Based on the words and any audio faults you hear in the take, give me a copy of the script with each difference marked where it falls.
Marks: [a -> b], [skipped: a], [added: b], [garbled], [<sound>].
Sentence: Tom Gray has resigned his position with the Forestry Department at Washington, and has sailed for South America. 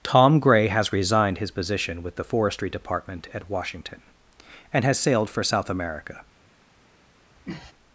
Tom Gray has resigned his position with the Forestry Department at Washington, and has sailed for South America. [sniff]